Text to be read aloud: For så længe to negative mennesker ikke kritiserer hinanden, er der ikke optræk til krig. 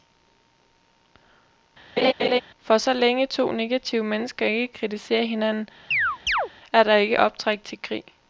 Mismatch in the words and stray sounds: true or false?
true